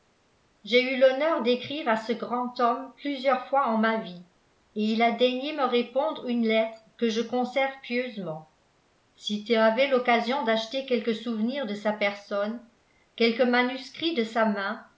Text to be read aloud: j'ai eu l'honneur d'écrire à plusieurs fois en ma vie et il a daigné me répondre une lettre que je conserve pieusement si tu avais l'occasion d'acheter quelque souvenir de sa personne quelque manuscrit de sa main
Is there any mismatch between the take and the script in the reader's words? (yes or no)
yes